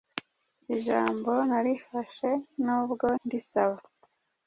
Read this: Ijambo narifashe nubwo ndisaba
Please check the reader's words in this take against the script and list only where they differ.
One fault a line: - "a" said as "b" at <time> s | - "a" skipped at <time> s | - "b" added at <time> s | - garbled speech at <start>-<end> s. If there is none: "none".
none